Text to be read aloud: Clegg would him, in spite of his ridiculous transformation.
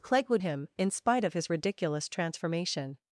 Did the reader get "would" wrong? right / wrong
right